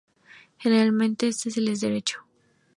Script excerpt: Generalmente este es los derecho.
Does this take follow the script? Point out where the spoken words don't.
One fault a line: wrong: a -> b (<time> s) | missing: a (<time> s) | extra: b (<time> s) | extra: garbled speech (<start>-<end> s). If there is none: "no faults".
wrong: los -> el (1.6 s)